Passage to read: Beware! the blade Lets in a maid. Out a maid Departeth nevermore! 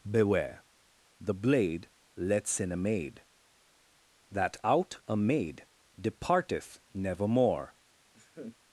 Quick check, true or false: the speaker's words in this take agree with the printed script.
false